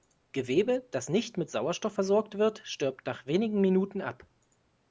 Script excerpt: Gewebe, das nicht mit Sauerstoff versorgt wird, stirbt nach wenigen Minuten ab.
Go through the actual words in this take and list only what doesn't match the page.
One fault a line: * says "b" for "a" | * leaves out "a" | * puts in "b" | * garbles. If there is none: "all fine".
all fine